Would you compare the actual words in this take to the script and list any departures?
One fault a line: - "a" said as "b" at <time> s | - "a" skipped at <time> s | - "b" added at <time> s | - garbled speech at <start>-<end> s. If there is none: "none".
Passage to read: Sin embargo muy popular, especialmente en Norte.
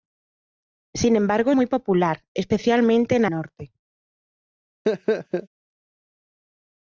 none